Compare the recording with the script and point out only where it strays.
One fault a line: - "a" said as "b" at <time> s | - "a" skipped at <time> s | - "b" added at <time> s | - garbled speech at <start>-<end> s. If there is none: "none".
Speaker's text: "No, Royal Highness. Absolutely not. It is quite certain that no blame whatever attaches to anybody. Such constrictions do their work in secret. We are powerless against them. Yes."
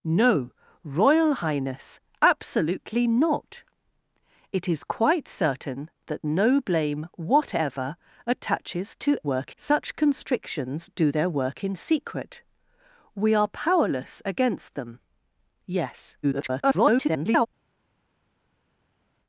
- "anybody" said as "work" at 9.2 s
- garbled speech at 16.2-17.5 s